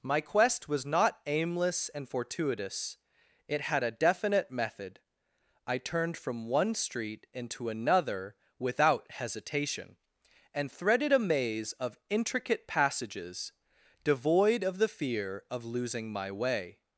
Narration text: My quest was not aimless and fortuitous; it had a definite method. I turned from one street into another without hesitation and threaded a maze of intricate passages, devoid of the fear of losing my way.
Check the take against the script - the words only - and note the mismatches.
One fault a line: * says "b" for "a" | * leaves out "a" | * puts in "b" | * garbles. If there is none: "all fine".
all fine